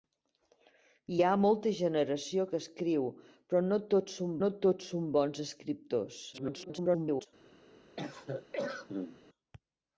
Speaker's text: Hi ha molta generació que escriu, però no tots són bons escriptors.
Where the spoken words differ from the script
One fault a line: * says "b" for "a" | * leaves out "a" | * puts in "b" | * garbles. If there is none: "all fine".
* puts in "no tots són"
* garbles